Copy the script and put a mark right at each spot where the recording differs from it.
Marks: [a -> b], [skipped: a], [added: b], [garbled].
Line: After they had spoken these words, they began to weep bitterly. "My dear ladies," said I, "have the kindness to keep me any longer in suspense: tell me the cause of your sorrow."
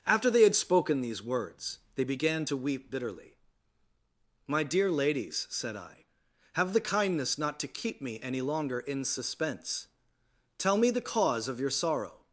After they had spoken these words, they began to weep bitterly. "My dear ladies," said I, "have the kindness [added: not] to keep me any longer in suspense: tell me the cause of your sorrow."